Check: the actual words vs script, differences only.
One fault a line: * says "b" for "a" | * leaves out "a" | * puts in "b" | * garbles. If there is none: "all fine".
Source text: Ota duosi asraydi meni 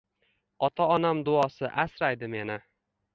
* puts in "onam"